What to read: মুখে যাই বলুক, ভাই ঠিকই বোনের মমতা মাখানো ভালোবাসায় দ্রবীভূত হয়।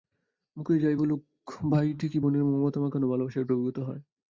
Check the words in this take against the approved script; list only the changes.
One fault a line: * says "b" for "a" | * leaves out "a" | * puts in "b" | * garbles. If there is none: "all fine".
all fine